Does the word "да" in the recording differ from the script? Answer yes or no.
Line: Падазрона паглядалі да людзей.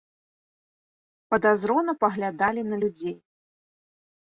yes